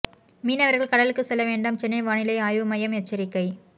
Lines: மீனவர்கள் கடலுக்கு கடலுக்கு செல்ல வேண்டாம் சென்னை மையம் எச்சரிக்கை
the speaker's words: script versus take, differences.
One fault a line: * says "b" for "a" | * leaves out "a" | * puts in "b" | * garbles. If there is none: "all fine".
* leaves out "கடலுக்கு"
* puts in "வானிலை ஆய்வு"